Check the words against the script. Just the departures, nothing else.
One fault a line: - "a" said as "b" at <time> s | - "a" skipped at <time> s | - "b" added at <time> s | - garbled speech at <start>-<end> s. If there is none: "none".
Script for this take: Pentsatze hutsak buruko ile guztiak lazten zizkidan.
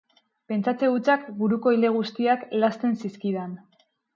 none